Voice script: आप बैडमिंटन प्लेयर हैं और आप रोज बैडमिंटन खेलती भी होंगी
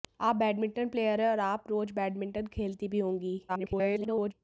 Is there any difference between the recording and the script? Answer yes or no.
yes